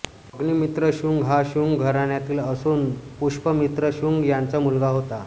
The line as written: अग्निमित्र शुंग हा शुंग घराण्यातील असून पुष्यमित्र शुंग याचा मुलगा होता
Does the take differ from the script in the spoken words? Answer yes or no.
no